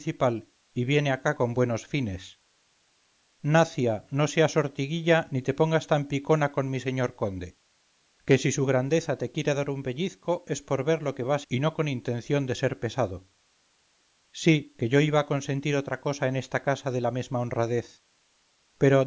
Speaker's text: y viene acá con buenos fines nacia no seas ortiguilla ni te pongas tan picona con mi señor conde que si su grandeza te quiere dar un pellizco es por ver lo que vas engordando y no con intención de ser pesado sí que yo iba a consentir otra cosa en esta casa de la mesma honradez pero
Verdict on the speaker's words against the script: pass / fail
fail